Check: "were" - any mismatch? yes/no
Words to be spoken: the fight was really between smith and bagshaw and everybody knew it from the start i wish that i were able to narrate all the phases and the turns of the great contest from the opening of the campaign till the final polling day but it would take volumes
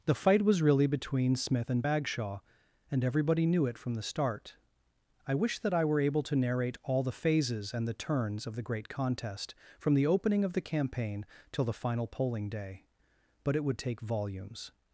no